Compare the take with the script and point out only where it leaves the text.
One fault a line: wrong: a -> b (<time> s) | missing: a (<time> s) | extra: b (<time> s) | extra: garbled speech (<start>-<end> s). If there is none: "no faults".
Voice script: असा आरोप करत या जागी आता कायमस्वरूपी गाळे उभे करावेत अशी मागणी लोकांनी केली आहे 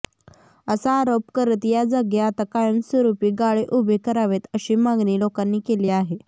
no faults